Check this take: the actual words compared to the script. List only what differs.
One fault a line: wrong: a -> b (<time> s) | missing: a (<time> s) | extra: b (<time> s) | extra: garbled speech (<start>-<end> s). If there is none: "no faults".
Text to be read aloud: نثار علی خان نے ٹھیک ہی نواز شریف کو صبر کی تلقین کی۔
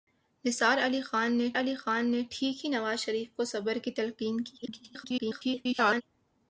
extra: علی خان نے (1.6 s)
extra: garbled speech (4.6-6.0 s)